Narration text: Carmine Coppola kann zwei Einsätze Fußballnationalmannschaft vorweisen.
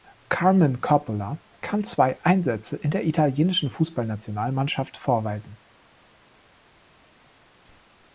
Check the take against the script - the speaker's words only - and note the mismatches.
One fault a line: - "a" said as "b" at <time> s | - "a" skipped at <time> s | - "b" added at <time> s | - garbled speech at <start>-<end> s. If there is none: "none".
- "in der italienischen" added at 2.8 s